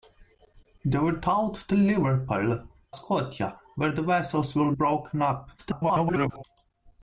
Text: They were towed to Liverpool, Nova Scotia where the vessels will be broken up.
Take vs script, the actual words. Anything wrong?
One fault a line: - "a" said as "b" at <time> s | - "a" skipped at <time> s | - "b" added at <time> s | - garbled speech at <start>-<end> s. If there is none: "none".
- "Nova" skipped at 2.8 s
- "be" skipped at 4.8 s
- garbled speech at 5.6-6.4 s